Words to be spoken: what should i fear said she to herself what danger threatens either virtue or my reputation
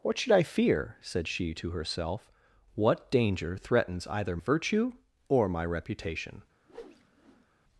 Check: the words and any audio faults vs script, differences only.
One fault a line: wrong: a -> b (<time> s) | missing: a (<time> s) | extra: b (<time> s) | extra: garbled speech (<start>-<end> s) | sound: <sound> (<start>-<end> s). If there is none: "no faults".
sound: whoosh (6.7-7.5 s)